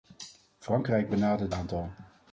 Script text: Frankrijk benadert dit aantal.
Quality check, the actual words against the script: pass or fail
fail